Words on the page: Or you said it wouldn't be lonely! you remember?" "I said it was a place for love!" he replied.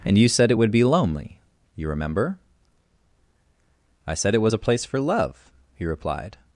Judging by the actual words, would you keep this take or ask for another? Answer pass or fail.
fail